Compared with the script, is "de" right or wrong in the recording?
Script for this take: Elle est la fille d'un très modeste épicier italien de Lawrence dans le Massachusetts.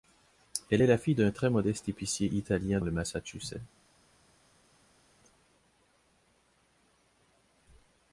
wrong